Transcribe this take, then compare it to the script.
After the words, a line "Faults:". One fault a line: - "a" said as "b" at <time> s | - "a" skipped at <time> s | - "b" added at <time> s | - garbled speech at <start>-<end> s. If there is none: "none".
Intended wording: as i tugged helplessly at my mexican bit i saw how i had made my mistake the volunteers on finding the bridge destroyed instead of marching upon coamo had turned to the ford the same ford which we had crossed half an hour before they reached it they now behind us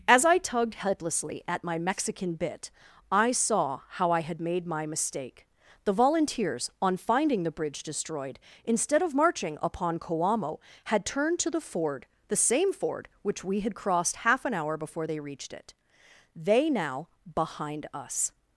as i tugged helplessly at my mexican bit i saw how i had made my mistake the volunteers on finding the bridge destroyed instead of marching upon coamo had turned to the ford the same ford which we had crossed half an hour before they reached it they now behind us
Faults:
none